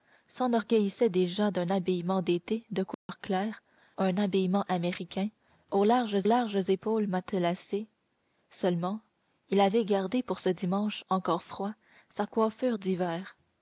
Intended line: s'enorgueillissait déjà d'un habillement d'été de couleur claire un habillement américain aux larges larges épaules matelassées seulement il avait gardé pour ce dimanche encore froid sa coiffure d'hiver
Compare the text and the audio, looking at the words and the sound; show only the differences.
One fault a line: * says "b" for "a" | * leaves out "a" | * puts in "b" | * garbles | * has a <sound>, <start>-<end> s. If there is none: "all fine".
* has a dropout, 2.9-3.1 s